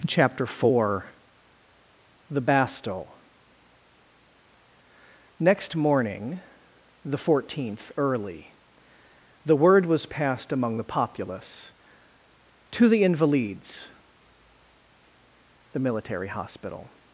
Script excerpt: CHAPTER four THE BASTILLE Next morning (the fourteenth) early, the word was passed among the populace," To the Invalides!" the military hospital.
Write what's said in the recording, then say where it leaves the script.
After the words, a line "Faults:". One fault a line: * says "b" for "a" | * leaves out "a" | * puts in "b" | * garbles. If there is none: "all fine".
CHAPTER four THE BASTILLE Next morning (the fourteenth) early, the word was passed among the populace," To the Invalides!" the military hospital.
Faults:
all fine